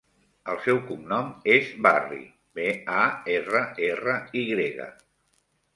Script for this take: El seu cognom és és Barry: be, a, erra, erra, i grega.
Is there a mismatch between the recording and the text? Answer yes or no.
yes